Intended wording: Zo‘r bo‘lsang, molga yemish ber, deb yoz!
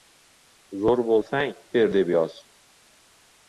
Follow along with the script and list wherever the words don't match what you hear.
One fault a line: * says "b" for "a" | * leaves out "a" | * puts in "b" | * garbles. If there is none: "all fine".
* leaves out "molga yemish"